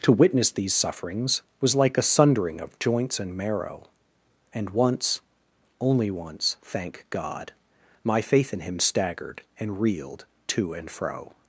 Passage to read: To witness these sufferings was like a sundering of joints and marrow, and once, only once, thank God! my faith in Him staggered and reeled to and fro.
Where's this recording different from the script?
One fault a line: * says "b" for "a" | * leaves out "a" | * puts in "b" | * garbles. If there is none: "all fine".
all fine